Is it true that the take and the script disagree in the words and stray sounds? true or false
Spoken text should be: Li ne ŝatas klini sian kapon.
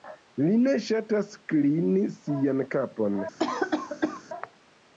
true